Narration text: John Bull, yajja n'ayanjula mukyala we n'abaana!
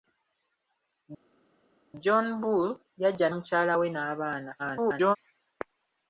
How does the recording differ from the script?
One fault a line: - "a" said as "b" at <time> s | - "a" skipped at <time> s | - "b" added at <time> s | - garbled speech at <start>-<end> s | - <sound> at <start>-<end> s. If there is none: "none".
- "n'ayanjula" skipped at 3.3 s
- garbled speech at 4.6-5.2 s